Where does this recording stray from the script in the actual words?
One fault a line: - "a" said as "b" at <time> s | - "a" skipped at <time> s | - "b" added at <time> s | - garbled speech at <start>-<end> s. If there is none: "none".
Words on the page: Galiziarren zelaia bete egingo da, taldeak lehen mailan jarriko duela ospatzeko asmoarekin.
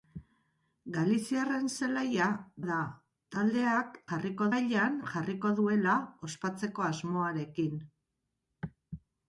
- "bete egingo" skipped at 2.3 s
- "lehen" said as "jarriko" at 4.1 s